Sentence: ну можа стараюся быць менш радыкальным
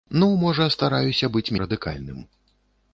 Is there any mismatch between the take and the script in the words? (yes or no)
yes